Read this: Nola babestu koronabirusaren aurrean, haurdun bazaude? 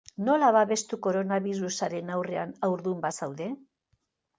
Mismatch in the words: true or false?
false